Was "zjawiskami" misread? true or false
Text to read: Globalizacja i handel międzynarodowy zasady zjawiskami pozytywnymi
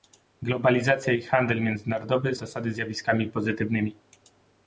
false